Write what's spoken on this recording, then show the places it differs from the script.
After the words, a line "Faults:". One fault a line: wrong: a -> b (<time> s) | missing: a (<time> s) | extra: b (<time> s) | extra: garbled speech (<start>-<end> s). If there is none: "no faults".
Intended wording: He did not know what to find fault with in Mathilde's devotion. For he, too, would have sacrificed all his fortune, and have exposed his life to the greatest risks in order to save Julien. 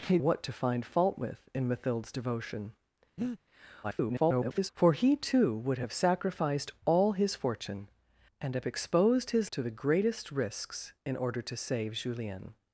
He what to find fault with in Mathilde's devotion. [garbled] For he, too, would have sacrificed all his fortune, and have exposed his to the greatest risks in order to save Julien.
Faults:
missing: did not know (0.2 s)
extra: garbled speech (3.8-4.7 s)
missing: life (9.5 s)